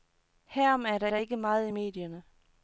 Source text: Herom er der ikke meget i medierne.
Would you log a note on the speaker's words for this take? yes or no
yes